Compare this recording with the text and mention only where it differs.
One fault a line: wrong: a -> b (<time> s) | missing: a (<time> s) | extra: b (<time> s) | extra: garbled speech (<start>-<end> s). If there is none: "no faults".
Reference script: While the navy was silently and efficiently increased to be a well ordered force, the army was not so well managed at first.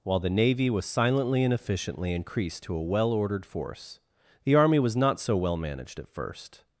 missing: be (2.8 s)